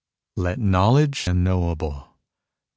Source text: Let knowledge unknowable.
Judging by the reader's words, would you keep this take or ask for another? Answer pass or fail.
pass